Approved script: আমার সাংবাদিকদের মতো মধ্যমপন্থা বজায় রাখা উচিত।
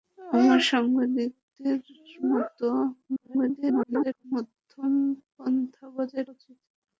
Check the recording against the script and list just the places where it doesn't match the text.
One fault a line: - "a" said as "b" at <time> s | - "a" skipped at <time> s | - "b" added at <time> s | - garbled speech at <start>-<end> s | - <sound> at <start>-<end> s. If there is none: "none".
- garbled speech at 3.1-4.2 s
- "রাখা" skipped at 6.3 s